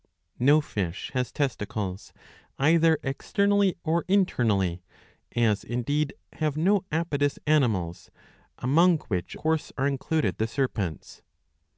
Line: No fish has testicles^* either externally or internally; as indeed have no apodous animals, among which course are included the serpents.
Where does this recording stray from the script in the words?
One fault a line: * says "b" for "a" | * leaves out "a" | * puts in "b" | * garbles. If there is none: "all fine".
all fine